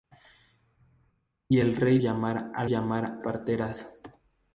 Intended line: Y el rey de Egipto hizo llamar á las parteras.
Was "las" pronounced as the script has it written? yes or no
no